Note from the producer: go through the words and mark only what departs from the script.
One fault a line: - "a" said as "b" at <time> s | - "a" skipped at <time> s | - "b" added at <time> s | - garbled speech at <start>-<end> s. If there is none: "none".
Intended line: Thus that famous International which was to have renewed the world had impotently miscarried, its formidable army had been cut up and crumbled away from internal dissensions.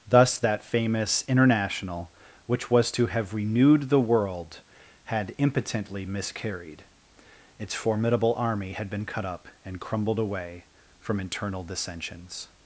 none